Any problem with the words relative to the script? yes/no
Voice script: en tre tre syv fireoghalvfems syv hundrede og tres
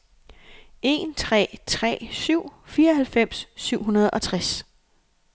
no